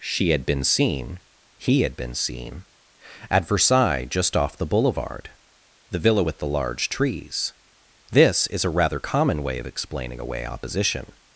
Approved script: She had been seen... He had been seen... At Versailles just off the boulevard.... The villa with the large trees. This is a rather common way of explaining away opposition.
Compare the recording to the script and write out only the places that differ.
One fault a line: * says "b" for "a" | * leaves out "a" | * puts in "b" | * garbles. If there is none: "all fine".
all fine